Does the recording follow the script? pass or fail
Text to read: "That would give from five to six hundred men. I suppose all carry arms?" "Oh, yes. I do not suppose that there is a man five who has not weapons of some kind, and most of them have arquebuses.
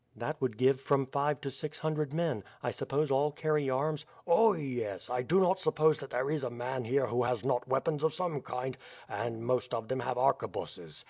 fail